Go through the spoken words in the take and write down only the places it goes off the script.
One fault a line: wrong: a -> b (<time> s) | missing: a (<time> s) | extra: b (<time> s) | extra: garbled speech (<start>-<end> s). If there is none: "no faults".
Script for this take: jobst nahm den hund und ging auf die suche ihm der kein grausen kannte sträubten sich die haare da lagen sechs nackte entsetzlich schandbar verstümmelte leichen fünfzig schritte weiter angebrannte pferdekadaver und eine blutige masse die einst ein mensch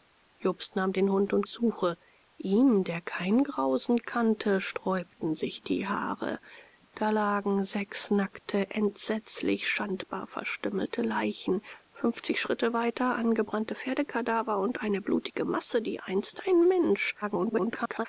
missing: ging auf die (1.4 s)
extra: garbled speech (17.2-18.1 s)